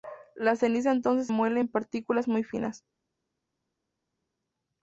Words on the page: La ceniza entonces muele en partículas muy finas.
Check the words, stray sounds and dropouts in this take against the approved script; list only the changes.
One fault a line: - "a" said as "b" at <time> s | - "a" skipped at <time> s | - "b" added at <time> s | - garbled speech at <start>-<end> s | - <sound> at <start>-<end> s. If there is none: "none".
none